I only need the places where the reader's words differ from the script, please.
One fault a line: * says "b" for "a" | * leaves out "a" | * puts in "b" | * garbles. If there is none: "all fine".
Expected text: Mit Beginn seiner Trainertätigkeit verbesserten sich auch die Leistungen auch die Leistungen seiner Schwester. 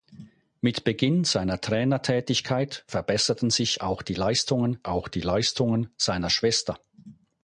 all fine